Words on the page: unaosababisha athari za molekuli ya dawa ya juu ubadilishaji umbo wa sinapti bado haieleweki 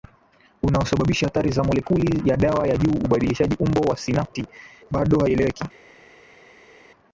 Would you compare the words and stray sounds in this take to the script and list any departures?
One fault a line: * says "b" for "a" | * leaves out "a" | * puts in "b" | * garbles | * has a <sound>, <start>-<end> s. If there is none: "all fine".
all fine